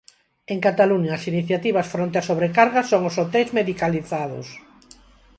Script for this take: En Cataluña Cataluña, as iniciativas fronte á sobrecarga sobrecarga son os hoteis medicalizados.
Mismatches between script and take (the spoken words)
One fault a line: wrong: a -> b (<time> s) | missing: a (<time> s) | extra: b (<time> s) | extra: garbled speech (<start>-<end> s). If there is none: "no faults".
missing: Cataluña (1.1 s)
missing: sobrecarga (2.8 s)